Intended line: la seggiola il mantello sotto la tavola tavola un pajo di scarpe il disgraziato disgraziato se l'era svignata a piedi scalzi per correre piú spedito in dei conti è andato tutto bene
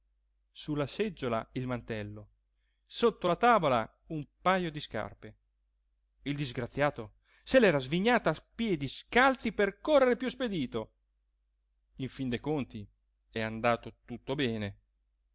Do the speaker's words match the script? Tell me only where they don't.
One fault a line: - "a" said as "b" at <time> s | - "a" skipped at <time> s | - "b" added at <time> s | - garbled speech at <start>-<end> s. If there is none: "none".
- "tavola" skipped at 4.0 s
- "disgraziato" skipped at 7.1 s
- "fin" added at 12.1 s